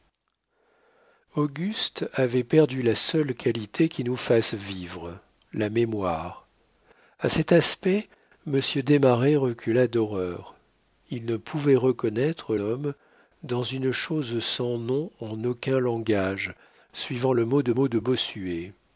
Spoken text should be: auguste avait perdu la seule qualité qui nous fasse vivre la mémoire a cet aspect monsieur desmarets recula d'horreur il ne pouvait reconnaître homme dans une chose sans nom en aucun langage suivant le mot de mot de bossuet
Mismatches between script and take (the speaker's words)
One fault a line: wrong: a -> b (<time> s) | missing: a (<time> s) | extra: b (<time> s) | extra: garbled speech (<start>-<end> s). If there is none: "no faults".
no faults